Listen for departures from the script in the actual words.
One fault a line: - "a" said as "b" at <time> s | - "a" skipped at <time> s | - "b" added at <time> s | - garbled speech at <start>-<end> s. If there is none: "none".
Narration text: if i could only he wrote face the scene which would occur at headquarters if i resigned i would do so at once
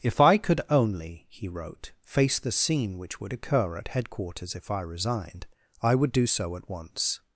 none